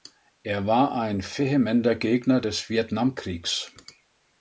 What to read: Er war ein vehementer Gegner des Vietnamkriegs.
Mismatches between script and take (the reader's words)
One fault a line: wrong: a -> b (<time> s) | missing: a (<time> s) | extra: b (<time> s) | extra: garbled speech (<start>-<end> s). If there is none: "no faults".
no faults